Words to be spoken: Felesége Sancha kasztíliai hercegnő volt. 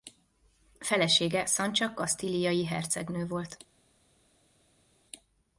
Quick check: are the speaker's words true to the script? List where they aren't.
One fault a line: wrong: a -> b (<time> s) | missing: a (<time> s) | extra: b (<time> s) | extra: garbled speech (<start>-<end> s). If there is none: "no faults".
no faults